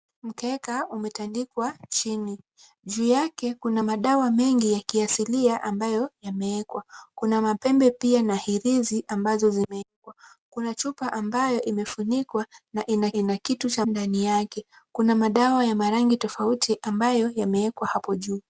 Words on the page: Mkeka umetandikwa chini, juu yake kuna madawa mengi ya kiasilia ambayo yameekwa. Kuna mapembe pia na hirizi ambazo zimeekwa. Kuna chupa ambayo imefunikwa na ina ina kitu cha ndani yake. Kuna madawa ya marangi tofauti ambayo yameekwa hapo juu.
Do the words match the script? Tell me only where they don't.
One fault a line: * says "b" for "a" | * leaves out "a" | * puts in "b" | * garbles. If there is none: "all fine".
all fine